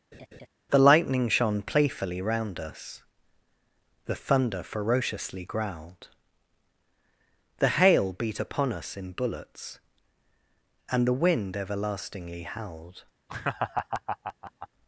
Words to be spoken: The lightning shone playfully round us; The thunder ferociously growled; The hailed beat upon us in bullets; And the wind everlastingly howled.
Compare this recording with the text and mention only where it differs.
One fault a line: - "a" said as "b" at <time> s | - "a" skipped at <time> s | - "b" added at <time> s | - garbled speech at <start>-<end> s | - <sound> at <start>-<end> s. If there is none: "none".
- laugh at 0.1-0.5 s
- "hailed" said as "hail" at 7.7 s
- laugh at 13.3-14.7 s